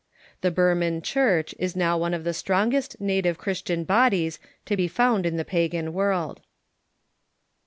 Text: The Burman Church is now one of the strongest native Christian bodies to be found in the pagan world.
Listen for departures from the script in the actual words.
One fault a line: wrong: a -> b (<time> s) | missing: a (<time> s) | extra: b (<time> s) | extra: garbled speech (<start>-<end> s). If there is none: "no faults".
no faults